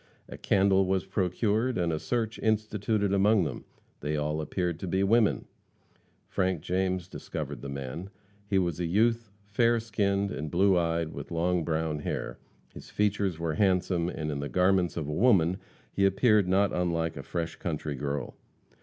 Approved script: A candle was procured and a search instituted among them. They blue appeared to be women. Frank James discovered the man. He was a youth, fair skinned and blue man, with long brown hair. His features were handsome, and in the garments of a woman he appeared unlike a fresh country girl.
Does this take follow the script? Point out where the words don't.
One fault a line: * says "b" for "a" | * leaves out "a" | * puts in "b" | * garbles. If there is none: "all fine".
* says "all" for "blue"
* says "eyed" for "man"
* puts in "not"